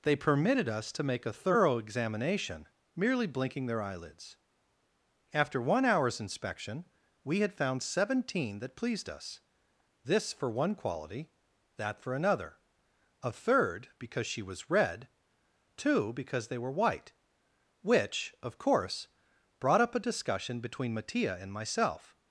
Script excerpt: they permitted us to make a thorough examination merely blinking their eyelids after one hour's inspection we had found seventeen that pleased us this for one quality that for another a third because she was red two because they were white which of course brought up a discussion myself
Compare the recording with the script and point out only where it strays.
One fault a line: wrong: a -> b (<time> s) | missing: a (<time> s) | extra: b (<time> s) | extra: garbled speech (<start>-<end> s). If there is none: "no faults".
extra: between mattia and (20.6 s)